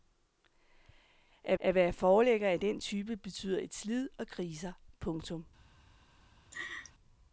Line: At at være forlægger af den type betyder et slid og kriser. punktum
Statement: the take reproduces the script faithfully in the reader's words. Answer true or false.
true